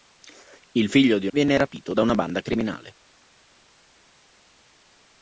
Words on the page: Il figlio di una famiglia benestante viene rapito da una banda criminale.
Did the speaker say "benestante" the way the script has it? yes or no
no